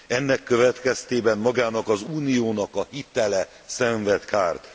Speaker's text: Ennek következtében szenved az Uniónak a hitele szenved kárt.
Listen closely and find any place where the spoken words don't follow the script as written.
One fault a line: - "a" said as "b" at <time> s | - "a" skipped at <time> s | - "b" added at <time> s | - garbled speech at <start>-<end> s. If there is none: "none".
- "szenved" said as "magának" at 1.4 s